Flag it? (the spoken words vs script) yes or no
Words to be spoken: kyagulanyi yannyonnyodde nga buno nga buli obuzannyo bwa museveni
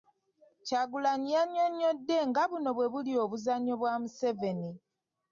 yes